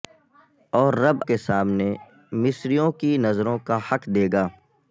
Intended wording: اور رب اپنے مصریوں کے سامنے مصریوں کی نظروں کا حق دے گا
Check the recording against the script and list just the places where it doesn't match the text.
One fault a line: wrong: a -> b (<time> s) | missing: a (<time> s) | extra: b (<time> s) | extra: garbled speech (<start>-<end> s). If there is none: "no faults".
missing: اپنے مصریوں (1.2 s)